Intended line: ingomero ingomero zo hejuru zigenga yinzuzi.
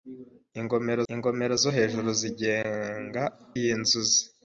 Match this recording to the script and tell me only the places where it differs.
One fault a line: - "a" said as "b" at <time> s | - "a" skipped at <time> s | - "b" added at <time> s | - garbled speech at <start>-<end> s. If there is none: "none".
none